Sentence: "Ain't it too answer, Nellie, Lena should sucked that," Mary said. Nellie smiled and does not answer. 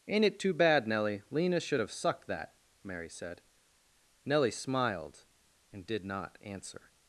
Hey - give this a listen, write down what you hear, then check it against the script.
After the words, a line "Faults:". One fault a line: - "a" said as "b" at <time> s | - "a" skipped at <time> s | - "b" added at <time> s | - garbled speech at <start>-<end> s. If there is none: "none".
"Ain't it too bad, Nellie, Lena should have sucked that," Mary said. Nellie smiled and did not answer.
Faults:
- "answer" said as "bad" at 0.5 s
- "have" added at 1.8 s
- "does" said as "did" at 5.9 s